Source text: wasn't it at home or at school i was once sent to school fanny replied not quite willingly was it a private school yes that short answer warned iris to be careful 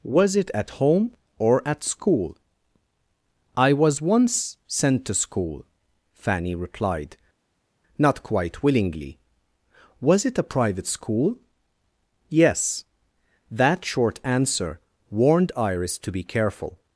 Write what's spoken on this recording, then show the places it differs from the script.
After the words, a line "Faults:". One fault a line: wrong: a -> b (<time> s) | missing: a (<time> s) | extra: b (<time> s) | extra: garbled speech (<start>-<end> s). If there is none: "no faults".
was it at home or at school i was once sent to school fanny replied not quite willingly was it a private school yes that short answer warned iris to be careful
Faults:
wrong: wasn't -> was (0.0 s)